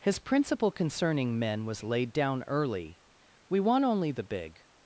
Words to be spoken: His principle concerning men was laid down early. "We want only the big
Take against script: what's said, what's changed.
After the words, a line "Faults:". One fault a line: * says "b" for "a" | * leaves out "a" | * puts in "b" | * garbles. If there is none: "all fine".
His principle concerning men was laid down early. "We want only the big
Faults:
all fine